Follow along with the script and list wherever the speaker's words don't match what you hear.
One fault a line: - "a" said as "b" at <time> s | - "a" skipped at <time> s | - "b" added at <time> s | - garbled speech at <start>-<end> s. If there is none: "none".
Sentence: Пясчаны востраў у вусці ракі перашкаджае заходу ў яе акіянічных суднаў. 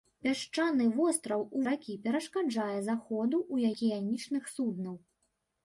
- "вусці" skipped at 1.6 s
- "яе" skipped at 3.7 s